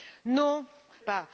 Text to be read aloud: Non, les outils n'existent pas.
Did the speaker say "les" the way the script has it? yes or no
no